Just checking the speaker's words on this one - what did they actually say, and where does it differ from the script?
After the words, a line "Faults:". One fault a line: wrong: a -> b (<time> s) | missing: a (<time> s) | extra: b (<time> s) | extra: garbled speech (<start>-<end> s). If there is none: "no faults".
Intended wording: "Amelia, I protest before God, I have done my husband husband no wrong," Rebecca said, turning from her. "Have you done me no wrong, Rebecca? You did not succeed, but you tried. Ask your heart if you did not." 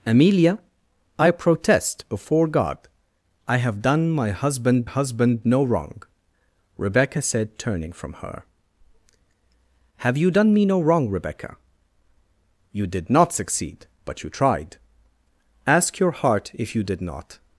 "Amelia, I protest before God, I have done my husband husband no wrong," Rebecca said, turning from her. "Have you done me no wrong, Rebecca? You did not succeed, but you tried. Ask your heart if you did not."
Faults:
no faults